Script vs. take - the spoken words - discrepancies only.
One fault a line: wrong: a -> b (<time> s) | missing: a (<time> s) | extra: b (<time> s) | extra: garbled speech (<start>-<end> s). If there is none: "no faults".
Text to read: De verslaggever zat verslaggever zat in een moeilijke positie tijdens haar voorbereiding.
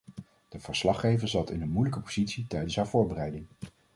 missing: verslaggever zat (1.5 s)